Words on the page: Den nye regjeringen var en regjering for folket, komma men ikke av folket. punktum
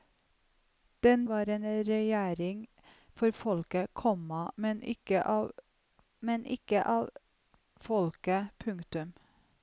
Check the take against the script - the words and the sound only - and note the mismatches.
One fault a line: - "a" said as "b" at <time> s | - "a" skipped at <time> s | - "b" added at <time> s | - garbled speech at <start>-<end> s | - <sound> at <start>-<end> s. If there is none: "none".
- "nye regjeringen" skipped at 1.2 s
- "men ikke av" added at 6.2 s